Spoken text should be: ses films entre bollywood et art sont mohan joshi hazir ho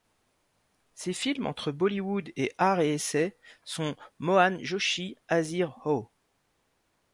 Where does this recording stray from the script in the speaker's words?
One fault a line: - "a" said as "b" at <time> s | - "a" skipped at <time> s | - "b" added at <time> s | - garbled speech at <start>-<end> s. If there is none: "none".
- "et essai" added at 2.8 s